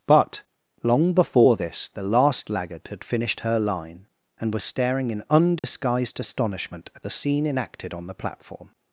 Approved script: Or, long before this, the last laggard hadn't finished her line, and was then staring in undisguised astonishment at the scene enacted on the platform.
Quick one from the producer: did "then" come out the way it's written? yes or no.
no